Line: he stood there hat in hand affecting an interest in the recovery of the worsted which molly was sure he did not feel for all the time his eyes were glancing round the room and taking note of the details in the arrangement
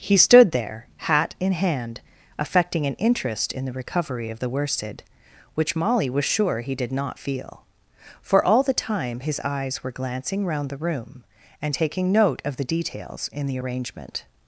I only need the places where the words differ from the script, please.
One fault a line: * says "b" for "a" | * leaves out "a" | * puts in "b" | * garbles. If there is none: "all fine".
all fine